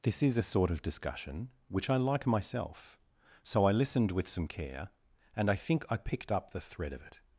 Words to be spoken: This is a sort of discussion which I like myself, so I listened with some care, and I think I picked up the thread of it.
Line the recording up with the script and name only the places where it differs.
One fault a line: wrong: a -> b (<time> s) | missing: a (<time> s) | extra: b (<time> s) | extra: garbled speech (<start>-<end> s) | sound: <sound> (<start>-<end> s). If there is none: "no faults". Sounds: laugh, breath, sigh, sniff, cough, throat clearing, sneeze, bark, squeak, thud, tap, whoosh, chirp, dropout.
no faults